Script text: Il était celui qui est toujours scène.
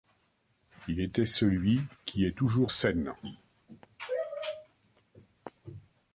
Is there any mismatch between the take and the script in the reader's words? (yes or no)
no